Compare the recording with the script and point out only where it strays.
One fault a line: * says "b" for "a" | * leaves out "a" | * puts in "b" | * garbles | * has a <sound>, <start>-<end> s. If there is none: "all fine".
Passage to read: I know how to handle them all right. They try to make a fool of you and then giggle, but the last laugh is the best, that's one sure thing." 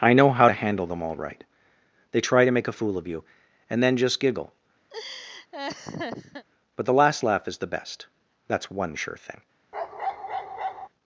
* puts in "just"
* has a laugh, 4.9-6.5 s
* has a bark, 9.7-10.9 s